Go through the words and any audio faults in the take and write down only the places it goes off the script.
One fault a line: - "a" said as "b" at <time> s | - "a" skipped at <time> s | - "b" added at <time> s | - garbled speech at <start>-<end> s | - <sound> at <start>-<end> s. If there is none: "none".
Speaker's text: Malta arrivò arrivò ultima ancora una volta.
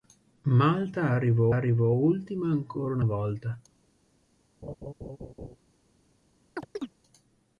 - laugh at 4.6-5.6 s
- chirp at 6.6-6.9 s